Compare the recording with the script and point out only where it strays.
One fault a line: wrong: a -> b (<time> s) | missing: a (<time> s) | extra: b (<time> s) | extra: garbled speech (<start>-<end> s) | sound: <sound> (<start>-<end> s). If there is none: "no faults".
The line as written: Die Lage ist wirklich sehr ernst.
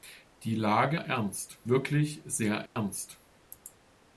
wrong: ist -> ernst (0.9 s)
sound: dropout (2.7-2.8 s)